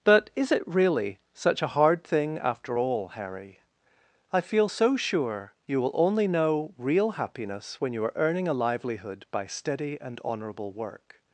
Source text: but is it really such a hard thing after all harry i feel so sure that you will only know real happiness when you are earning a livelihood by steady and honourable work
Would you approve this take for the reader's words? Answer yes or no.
no